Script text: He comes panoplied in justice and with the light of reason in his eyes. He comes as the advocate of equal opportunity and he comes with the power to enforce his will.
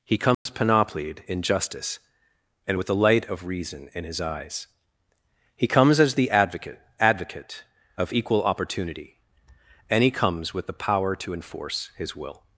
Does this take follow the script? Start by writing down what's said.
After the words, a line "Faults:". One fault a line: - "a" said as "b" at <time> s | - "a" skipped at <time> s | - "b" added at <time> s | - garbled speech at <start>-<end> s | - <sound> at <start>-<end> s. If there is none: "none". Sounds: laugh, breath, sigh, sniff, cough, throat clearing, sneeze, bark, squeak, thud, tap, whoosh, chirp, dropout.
He comes panoplied in justice and with the light of reason in his eyes. He comes as the advocate advocate of equal opportunity and he comes with the power to enforce his will.
Faults:
- dropout at 0.3-0.5 s
- "advocate" added at 7.0 s